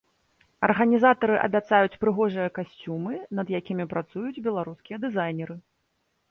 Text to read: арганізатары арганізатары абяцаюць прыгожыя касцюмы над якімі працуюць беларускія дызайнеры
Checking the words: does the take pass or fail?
fail